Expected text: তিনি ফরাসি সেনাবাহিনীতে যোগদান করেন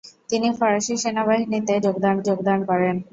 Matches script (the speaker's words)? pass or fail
fail